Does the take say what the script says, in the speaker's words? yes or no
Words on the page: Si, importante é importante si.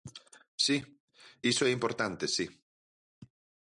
no